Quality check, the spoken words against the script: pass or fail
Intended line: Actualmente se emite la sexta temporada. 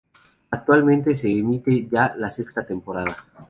fail